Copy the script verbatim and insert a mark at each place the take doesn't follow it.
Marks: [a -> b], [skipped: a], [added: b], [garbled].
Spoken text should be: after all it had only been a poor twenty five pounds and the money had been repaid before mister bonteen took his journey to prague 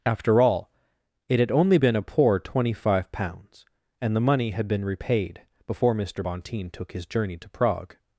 after all it had only been a poor twenty five pounds and the money had been repaid before mister bonteen took his journey to prague